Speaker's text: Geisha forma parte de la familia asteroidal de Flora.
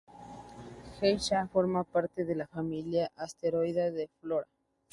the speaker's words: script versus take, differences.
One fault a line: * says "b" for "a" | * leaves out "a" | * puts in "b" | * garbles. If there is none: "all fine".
all fine